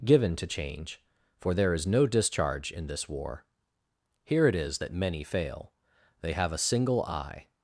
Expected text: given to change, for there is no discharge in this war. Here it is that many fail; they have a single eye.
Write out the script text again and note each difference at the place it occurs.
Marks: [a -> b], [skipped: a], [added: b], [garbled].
given to change, for there is no discharge in this war. Here it is that many fail; they have a single eye.